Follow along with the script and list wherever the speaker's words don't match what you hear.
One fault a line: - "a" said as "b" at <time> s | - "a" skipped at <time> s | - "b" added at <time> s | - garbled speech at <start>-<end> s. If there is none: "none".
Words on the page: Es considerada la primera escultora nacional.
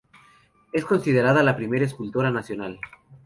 none